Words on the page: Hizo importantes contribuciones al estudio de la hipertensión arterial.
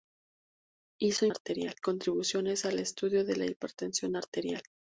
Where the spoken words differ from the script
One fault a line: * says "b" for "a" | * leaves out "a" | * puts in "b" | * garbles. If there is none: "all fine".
* says "arterial" for "importantes"